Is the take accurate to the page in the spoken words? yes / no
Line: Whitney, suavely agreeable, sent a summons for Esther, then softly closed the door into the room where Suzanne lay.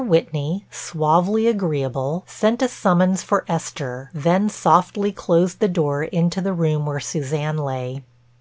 yes